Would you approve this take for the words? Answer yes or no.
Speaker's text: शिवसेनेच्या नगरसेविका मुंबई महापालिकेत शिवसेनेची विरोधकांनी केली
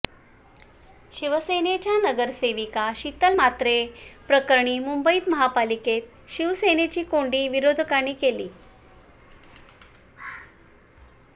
no